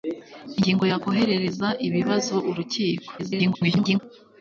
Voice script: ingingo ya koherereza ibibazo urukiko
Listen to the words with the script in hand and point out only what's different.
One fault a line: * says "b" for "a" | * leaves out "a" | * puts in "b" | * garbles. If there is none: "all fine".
* garbles